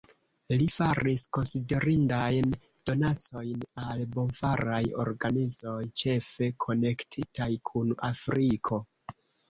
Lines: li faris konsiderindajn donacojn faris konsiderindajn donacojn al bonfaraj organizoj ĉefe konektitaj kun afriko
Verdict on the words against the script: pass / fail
fail